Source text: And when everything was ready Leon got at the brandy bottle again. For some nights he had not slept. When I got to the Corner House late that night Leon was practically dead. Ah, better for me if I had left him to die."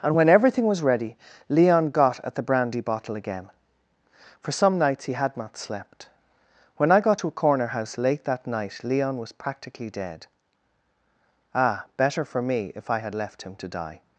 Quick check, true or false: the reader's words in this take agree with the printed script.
false